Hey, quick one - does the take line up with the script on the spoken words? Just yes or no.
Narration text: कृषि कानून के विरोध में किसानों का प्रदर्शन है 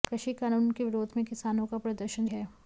yes